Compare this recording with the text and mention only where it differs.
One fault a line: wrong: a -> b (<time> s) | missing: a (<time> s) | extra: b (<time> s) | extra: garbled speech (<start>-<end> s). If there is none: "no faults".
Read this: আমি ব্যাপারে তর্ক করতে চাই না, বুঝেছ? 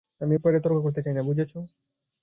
no faults